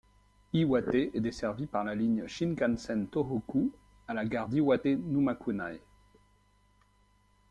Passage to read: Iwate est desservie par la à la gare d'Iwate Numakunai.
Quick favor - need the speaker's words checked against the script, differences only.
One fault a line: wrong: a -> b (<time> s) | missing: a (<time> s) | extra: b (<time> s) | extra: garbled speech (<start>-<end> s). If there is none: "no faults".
extra: ligne Shinkansen Tōhoku (1.9 s)